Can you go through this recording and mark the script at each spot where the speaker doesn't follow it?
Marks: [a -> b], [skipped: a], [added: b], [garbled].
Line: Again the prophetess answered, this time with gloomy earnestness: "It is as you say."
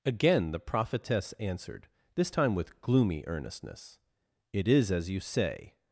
Again the prophetess answered, this time with gloomy earnestness: "It is as you say."